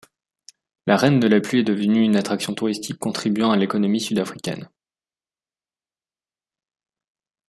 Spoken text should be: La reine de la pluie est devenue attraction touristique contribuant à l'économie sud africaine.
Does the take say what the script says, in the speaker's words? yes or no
no